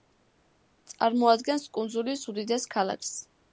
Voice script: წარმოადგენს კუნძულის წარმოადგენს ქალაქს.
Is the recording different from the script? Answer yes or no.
yes